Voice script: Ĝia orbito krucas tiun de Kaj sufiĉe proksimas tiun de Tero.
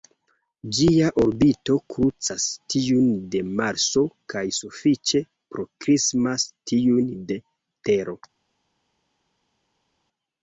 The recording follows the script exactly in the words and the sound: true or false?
false